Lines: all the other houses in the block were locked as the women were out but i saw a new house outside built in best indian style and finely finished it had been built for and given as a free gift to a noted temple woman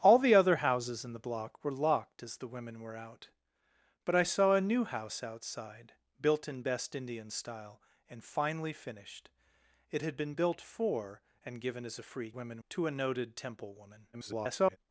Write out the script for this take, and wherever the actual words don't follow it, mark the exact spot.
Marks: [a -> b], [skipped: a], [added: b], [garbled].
all the other houses in the block were locked as the women were out but i saw a new house outside built in best indian style and finely finished it had been built for and given as a free [gift -> women] to a noted temple woman [garbled]